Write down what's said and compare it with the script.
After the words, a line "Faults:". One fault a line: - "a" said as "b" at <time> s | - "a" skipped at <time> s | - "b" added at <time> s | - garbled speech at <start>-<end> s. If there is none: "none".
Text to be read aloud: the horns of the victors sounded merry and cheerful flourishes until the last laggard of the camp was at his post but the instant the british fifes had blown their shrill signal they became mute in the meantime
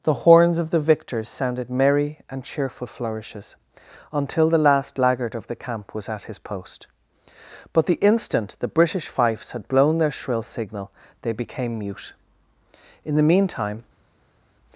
the horns of the victors sounded merry and cheerful flourishes until the last laggard of the camp was at his post but the instant the british fifes had blown their shrill signal they became mute in the meantime
Faults:
none